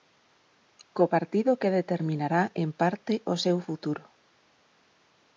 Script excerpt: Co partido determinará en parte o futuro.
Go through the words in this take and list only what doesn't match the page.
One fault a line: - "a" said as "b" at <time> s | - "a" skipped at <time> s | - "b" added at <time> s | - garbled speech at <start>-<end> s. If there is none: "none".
- "que" added at 1.6 s
- "seu" added at 3.4 s